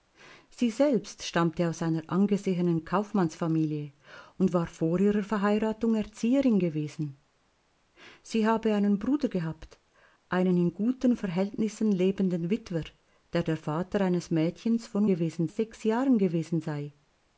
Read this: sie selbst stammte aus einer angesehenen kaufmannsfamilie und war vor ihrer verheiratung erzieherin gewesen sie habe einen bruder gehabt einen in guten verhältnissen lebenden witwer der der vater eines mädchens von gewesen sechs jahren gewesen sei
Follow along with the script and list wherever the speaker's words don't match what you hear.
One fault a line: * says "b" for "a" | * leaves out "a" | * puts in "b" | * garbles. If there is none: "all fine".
all fine